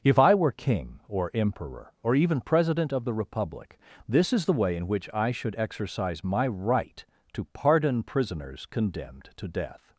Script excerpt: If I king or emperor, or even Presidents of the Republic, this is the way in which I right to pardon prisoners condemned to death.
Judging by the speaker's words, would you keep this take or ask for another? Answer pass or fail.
fail